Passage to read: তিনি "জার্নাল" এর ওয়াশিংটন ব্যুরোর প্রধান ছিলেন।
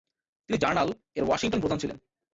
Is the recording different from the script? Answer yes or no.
yes